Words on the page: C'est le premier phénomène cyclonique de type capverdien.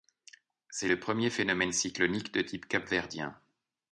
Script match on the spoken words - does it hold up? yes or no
yes